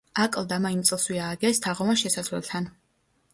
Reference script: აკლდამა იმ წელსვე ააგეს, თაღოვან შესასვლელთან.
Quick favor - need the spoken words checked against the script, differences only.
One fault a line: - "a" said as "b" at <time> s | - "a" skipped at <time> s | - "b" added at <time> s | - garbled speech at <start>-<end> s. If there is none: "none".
none